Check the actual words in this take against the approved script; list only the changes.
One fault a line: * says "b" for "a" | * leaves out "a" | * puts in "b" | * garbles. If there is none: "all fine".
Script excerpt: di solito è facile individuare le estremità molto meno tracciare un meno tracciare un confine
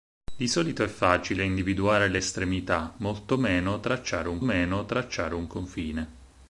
all fine